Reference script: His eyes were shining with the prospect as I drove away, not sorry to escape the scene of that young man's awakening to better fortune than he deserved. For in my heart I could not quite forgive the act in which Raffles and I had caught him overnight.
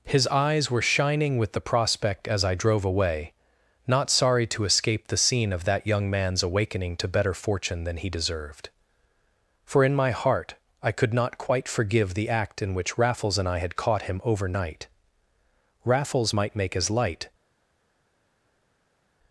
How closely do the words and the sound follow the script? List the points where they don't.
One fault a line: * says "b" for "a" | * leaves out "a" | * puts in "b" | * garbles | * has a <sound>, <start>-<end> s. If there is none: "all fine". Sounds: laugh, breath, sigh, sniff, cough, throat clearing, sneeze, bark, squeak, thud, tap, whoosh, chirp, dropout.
* puts in "Raffles might make as light"